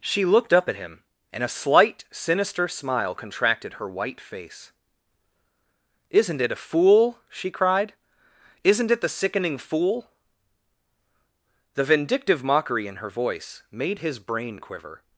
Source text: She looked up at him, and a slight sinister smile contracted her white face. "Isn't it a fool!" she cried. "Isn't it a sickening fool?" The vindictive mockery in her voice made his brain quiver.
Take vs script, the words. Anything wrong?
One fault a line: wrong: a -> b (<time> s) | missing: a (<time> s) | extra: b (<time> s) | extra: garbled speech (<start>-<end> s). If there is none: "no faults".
wrong: a -> the (9.0 s)